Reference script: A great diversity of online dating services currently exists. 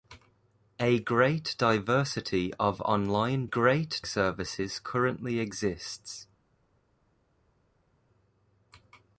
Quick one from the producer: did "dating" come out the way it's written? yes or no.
no